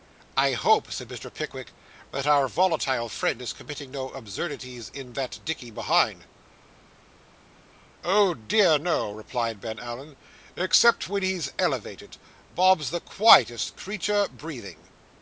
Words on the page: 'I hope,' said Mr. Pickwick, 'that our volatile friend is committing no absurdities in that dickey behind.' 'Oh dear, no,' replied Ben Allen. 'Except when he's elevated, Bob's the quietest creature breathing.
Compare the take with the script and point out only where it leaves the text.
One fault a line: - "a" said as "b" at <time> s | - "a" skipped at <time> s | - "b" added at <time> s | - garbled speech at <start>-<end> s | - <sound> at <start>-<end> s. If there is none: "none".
none